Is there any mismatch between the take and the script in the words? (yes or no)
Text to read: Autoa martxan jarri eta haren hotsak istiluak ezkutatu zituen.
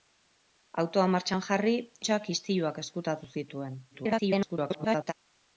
yes